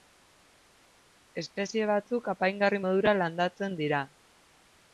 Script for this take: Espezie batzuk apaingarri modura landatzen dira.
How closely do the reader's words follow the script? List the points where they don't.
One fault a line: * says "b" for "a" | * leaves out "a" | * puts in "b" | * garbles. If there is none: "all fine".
all fine